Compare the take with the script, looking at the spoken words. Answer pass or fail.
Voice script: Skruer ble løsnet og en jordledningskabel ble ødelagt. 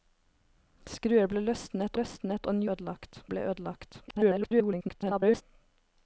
fail